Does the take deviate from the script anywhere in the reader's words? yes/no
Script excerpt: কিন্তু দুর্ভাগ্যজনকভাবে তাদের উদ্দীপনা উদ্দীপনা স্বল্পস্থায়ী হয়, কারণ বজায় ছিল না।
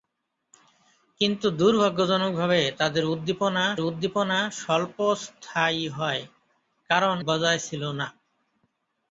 no